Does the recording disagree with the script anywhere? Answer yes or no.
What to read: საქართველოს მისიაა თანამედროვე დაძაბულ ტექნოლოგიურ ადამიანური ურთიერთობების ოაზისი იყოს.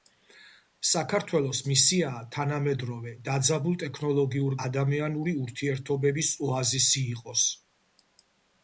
no